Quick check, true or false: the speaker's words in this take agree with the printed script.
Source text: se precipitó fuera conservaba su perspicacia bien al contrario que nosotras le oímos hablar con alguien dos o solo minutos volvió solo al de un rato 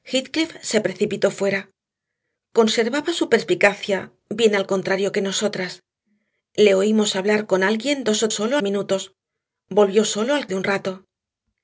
true